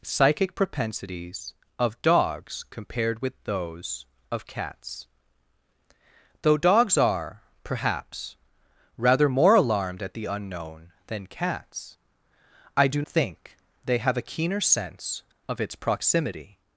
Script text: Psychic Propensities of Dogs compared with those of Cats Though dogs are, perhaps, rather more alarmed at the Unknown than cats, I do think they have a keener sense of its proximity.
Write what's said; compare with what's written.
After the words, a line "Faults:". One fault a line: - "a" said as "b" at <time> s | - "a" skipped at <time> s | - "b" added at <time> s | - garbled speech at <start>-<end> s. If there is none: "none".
Psychic Propensities of Dogs compared with those of Cats Though dogs are, perhaps, rather more alarmed at the Unknown than cats, I do think they have a keener sense of its proximity.
Faults:
none